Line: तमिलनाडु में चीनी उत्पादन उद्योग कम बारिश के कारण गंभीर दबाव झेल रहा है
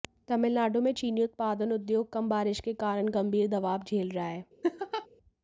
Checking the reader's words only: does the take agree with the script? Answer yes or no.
yes